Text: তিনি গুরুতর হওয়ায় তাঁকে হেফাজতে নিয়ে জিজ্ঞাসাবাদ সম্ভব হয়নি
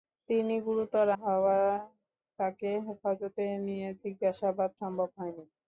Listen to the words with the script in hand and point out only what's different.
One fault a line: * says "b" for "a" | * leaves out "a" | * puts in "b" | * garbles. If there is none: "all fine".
all fine